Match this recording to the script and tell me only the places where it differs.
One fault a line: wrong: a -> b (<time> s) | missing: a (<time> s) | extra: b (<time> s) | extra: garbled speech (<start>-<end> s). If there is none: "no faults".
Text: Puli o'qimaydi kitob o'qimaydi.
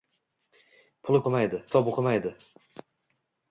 no faults